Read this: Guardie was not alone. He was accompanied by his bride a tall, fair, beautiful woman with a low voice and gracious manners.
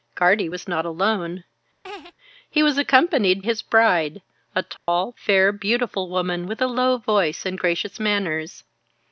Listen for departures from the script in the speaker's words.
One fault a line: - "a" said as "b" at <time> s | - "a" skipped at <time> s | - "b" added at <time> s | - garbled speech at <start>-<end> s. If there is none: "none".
- "by" skipped at 3.4 s